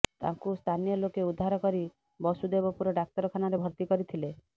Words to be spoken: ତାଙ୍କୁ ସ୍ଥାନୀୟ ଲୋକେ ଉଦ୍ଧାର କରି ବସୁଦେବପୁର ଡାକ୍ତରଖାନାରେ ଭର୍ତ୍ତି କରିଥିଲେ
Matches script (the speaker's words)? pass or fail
pass